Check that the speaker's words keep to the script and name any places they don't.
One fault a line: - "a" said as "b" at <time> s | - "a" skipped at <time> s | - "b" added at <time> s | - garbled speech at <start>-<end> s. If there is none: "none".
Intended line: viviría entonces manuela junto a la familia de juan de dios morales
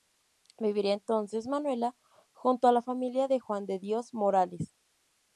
none